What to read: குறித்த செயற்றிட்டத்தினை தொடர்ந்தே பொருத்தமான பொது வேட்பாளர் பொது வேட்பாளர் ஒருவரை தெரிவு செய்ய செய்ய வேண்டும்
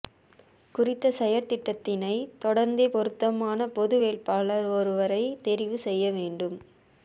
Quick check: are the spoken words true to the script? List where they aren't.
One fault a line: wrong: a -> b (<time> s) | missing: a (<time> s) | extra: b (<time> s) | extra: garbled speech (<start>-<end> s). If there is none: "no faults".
missing: பொது வேட்பாளர் (4.7 s)
missing: செய்ய (6.1 s)